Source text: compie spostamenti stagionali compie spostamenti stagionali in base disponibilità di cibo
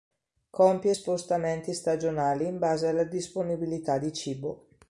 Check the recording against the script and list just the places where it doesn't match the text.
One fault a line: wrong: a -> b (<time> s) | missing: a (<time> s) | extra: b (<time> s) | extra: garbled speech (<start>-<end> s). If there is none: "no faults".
missing: compie spostamenti stagionali (2.4 s)
extra: alla (2.9 s)